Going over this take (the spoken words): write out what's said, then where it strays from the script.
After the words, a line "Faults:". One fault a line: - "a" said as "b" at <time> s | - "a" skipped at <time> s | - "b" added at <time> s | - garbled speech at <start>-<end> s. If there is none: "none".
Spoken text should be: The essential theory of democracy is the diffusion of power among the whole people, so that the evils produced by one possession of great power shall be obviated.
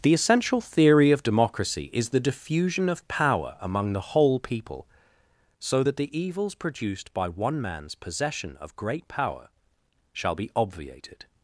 The essential theory of democracy is the diffusion of power among the whole people, so that the evils produced by one man's possession of great power shall be obviated.
Faults:
- "man's" added at 7.6 s